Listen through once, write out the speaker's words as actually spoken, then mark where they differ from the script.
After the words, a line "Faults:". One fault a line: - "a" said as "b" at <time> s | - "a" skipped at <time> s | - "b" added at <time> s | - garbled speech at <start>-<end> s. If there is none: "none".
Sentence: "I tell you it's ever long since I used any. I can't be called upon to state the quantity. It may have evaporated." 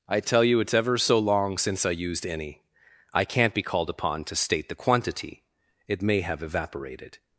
"I tell you it's ever so long since I used any. I can't be called upon to state the quantity. It may have evaporated."
Faults:
- "so" added at 1.0 s